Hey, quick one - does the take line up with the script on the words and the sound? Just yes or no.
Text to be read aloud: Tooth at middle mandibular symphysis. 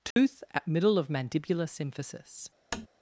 no